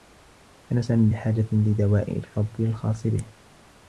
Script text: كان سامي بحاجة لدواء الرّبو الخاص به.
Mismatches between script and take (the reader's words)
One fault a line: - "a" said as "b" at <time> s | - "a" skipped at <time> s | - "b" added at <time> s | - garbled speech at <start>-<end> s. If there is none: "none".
none